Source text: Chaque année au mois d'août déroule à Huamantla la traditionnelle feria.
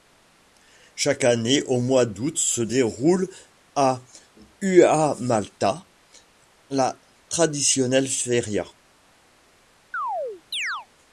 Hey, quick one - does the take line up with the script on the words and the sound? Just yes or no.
no